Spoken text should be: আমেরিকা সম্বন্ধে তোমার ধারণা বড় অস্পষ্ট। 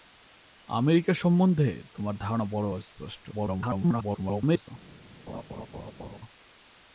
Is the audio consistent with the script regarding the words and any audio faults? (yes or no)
no